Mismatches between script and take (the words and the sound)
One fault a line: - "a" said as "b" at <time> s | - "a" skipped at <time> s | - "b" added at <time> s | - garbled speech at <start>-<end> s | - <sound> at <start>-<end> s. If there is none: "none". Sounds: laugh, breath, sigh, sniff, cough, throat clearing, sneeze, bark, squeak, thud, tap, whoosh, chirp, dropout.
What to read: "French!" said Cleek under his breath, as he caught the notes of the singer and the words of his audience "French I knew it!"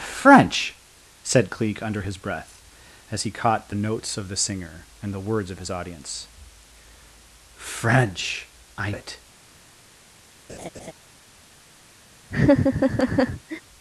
- "knew" skipped at 8.9 s
- laugh at 10.5-10.9 s
- laugh at 12.3-13.6 s